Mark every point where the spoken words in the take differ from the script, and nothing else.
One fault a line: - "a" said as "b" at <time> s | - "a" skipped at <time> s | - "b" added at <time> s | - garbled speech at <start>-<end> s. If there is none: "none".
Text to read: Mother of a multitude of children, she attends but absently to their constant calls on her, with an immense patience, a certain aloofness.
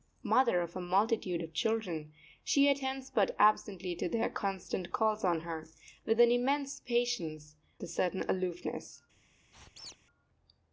none